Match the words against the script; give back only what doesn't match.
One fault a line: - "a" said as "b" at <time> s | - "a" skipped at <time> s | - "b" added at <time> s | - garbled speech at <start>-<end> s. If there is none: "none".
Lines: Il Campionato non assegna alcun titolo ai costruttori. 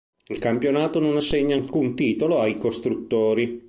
none